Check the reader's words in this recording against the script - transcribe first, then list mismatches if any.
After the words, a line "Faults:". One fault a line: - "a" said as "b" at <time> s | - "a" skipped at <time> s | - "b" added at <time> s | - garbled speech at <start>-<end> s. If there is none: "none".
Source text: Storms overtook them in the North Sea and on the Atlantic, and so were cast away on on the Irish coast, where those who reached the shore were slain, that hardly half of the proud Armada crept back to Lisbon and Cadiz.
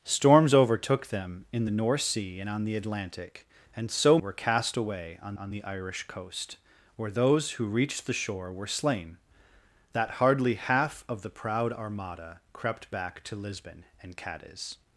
Storms overtook them in the North Sea and on the Atlantic, and so were cast away on on the Irish coast, where those who reached the shore were slain, that hardly half of the proud Armada crept back to Lisbon and Cadiz.
Faults:
none